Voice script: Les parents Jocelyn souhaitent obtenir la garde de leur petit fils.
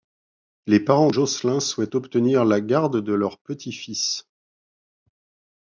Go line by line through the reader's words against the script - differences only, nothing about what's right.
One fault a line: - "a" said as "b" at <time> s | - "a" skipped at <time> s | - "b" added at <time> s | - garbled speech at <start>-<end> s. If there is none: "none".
none